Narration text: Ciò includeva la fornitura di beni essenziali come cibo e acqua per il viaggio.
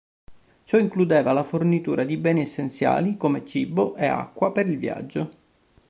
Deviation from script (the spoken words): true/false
false